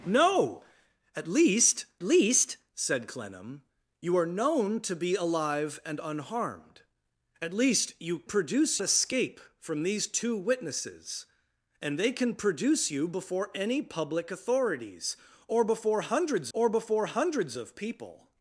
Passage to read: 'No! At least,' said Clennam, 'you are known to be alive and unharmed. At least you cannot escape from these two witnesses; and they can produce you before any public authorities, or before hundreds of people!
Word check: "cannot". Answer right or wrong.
wrong